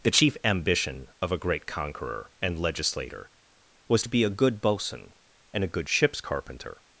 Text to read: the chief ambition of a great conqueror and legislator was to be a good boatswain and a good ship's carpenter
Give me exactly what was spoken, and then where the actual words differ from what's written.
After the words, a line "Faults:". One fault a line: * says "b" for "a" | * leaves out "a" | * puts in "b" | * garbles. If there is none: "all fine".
the chief ambition of a great conqueror and legislator was to be a good boatswain and a good ship's carpenter
Faults:
all fine